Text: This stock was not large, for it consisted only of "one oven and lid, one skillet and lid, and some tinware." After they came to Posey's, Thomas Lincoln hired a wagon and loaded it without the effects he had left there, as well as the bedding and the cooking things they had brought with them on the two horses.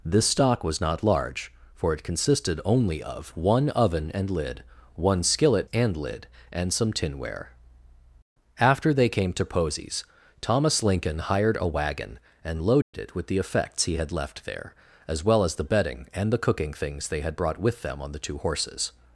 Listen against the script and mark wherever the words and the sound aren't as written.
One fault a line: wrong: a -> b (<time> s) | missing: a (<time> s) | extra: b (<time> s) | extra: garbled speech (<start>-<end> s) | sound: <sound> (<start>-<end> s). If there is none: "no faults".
sound: dropout (12.8-12.9 s)
wrong: without -> with (13.1 s)